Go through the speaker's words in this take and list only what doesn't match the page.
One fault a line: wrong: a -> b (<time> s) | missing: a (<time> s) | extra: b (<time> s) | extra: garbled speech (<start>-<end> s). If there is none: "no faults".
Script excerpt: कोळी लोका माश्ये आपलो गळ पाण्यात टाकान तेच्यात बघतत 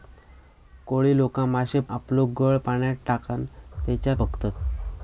no faults